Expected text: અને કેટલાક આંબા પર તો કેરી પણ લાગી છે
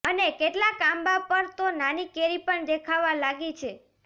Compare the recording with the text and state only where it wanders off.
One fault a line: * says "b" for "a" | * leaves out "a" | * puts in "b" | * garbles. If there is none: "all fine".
* puts in "નાની"
* puts in "દેખાવા"